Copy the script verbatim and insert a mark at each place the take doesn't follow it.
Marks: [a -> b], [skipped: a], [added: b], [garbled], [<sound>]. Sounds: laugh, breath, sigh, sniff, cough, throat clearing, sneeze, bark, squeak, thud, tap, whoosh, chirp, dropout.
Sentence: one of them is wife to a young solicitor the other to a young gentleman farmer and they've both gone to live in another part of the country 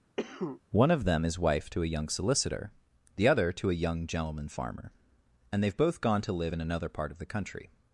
[cough] one of them is wife to a young solicitor the other to a young gentleman farmer and they've both gone to live in another part of the country